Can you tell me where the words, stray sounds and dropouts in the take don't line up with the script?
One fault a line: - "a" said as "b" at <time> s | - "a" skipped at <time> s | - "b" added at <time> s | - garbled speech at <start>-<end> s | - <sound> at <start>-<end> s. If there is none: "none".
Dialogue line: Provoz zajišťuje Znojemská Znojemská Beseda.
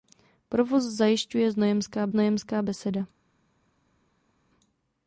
none